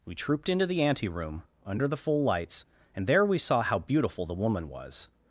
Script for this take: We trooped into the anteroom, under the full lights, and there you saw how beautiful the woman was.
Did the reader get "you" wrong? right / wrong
wrong